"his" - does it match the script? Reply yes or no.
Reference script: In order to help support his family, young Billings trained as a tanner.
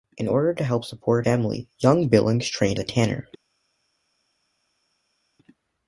no